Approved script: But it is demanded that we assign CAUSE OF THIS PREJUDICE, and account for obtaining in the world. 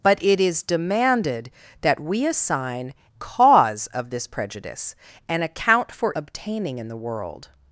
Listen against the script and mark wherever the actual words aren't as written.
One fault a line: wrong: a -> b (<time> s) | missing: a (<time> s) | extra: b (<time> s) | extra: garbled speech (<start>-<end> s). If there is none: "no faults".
no faults